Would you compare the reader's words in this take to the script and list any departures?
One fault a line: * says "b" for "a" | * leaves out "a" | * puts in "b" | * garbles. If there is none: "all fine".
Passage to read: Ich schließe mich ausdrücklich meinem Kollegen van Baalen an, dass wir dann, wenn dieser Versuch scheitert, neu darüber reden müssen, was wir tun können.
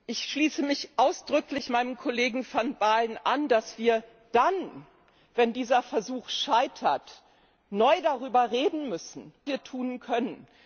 * leaves out "was"